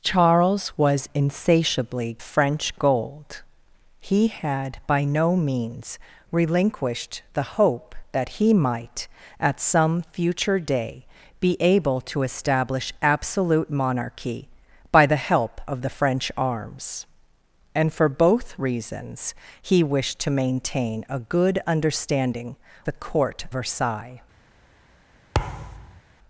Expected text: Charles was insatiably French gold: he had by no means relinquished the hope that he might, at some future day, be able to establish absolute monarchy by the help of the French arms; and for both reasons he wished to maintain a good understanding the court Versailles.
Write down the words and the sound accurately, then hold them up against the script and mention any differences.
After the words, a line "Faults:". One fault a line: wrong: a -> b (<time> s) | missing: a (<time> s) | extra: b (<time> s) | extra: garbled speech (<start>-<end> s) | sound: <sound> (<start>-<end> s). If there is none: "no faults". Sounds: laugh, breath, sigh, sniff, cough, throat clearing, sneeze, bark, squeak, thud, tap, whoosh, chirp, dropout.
Charles was insatiably French gold: he had by no means relinquished the hope that he might, at some future day, be able to establish absolute monarchy by the help of the French arms; and for both reasons he wished to maintain a good understanding the court Versailles.
Faults:
sound: thud (25.3-26.0 s)